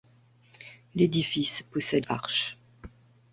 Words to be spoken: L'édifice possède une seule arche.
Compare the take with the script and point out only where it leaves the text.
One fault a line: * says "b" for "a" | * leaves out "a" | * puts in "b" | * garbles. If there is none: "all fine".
* leaves out "une seule"